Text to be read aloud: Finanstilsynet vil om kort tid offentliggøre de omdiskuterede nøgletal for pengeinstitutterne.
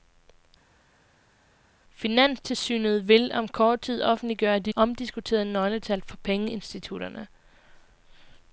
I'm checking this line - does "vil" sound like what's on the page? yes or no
yes